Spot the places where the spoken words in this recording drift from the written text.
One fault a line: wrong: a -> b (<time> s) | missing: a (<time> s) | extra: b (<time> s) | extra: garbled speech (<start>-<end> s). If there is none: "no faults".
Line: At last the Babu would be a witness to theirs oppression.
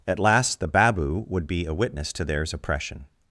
no faults